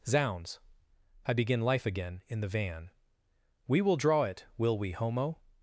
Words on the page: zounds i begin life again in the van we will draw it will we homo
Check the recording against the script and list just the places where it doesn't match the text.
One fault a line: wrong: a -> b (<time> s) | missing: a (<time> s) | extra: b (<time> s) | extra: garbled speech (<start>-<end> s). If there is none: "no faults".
no faults